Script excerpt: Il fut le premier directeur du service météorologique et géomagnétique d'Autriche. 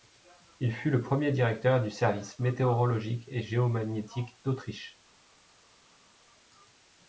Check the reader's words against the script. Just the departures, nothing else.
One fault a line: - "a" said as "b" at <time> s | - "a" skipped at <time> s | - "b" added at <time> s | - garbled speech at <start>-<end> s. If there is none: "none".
none